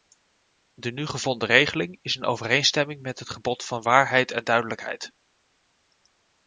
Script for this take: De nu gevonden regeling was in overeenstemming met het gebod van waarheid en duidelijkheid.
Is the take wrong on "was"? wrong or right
wrong